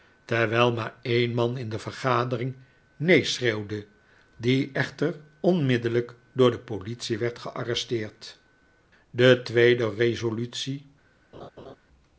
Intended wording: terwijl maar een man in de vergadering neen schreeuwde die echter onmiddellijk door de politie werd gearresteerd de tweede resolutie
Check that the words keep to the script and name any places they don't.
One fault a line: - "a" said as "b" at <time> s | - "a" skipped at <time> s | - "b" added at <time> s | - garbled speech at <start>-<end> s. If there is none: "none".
none